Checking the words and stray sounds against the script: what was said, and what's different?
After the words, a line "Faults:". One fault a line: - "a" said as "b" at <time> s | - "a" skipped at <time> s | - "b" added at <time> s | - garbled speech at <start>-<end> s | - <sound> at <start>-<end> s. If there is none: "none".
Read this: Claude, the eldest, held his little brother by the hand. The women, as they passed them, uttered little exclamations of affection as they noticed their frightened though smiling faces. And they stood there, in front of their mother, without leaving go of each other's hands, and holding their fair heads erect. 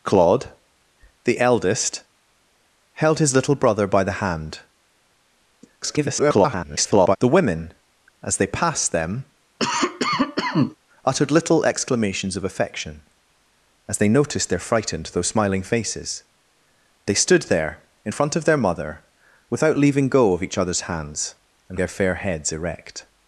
Claude, the eldest, held his little brother by the hand. [garbled] The women, as they passed them, uttered little exclamations of affection as they noticed their frightened though smiling faces. They stood there, in front of their mother, without leaving go of each other's hands, and their fair heads erect.
Faults:
- garbled speech at 5.8-7.2 s
- cough at 9.6-10.8 s
- "And" skipped at 16.2 s
- "holding" skipped at 21.8 s